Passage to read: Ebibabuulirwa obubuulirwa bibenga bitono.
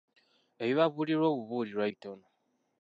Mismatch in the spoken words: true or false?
true